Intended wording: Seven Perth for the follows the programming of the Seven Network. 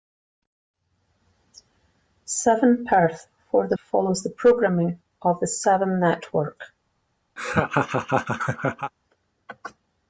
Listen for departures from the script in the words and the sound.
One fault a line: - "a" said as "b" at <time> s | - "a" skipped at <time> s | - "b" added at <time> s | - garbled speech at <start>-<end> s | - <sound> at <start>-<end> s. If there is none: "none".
- laugh at 7.4-8.9 s